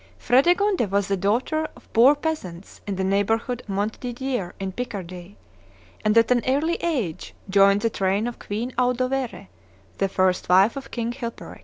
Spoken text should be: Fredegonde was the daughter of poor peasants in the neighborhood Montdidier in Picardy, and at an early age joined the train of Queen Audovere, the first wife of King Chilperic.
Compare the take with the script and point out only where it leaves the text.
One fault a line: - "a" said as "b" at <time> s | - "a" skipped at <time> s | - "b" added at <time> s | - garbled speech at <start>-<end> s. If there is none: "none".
none